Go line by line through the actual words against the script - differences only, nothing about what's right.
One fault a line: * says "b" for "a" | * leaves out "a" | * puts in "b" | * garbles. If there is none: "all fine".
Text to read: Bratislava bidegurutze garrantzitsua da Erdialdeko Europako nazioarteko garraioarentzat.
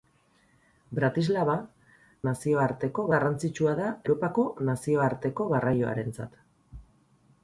* says "nazioarteko" for "bidegurutze"
* leaves out "Erdialdeko"